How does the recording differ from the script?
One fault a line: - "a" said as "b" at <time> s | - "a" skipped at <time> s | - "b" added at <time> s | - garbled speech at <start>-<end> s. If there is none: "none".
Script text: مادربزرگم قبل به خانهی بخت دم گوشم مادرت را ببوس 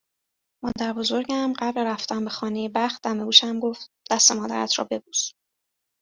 - "رفتن" added at 1.8 s
- "گفت دست" added at 3.6 s